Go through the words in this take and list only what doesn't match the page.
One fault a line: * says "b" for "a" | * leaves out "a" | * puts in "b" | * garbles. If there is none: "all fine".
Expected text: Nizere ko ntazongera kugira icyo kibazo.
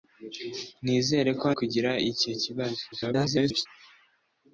* leaves out "ntazongera"
* garbles